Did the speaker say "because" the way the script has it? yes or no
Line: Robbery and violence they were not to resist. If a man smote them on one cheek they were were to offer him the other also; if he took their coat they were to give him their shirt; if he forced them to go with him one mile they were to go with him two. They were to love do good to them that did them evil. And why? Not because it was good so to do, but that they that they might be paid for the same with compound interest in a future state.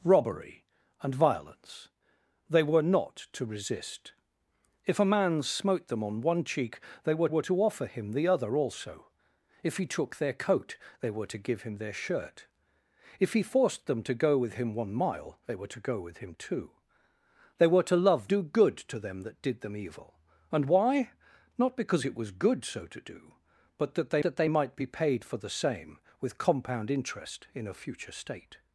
yes